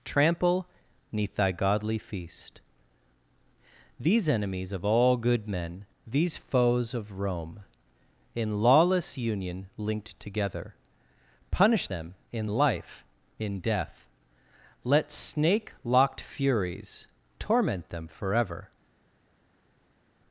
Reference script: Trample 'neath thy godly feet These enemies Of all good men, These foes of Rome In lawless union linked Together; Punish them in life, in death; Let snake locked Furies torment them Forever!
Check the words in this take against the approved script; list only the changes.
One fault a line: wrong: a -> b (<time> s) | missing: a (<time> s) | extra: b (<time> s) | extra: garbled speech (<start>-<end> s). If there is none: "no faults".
wrong: feet -> feast (2.0 s)